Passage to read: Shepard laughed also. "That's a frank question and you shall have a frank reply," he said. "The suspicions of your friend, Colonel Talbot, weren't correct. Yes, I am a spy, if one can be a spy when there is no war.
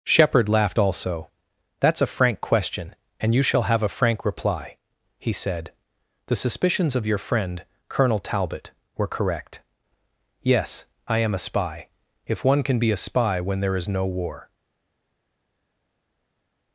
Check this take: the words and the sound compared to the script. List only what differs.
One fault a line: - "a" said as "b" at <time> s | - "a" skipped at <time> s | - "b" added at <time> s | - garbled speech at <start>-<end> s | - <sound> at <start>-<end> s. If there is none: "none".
- "weren't" said as "were" at 9.0 s